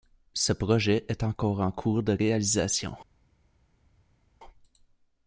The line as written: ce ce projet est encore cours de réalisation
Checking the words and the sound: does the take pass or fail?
fail